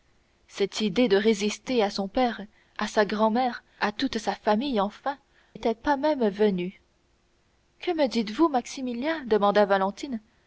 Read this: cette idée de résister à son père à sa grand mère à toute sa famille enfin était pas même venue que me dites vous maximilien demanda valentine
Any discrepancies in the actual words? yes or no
no